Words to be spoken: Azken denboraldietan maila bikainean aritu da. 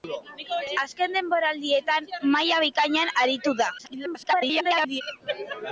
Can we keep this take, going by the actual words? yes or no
no